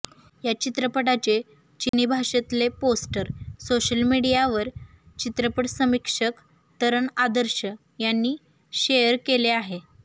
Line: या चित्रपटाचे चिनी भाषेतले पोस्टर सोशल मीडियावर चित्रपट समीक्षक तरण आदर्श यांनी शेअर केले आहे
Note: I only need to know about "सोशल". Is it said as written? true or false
true